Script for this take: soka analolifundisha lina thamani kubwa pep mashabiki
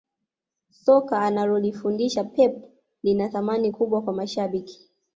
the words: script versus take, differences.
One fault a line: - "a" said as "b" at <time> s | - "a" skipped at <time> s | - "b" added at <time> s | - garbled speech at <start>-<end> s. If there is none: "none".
- "pep" added at 2.2 s
- "pep" said as "kwa" at 4.0 s